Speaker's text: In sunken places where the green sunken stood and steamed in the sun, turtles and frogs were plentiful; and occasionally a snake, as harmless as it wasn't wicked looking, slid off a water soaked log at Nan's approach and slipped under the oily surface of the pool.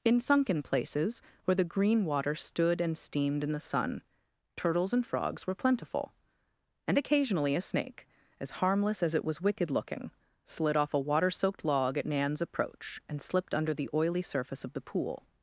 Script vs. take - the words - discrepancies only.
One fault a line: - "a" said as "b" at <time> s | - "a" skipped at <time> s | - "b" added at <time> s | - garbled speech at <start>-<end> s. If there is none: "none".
- "sunken" said as "water" at 2.0 s
- "wasn't" said as "was" at 9.2 s